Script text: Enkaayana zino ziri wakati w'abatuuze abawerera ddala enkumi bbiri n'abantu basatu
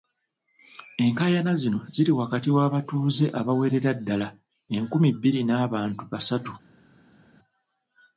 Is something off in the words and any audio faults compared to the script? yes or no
no